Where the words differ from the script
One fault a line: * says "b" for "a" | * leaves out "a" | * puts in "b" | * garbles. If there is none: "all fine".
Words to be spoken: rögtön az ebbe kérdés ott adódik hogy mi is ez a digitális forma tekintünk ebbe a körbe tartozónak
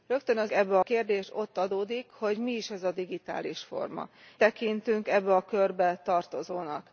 all fine